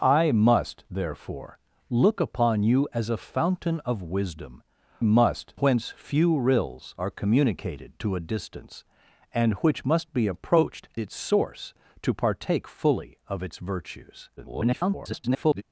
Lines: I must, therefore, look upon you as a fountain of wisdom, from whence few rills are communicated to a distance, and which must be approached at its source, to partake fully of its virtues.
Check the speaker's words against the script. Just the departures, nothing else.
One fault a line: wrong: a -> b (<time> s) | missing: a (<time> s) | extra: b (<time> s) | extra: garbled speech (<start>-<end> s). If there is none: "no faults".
wrong: from -> must (5.0 s)
missing: at (10.9 s)
extra: garbled speech (14.4-15.6 s)